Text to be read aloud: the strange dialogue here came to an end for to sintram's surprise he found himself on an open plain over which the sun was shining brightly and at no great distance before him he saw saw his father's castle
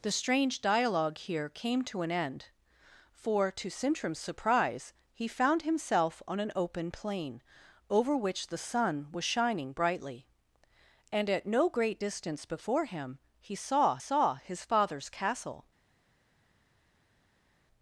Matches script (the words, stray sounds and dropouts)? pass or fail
pass